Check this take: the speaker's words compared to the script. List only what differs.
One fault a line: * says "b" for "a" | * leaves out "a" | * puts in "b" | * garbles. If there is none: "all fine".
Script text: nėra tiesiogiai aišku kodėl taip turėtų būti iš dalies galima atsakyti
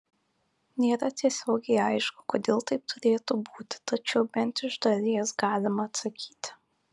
* puts in "tačiau bent"